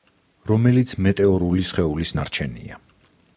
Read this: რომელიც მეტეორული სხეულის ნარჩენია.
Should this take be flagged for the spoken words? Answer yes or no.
no